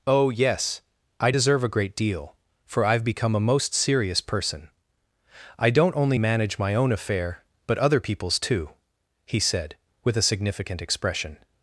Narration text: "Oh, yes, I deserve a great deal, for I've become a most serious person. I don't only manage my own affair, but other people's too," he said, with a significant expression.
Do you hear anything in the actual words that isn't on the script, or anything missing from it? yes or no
no